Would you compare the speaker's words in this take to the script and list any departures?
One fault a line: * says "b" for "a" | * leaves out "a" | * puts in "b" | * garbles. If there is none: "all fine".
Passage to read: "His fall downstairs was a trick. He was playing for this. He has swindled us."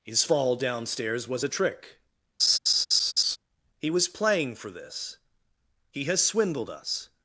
all fine